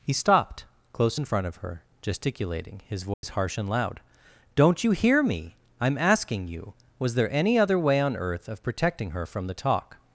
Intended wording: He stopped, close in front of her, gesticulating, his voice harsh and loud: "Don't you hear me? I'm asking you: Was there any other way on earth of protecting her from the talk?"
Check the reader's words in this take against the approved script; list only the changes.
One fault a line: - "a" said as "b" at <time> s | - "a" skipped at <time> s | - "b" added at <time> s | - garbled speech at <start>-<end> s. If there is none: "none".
none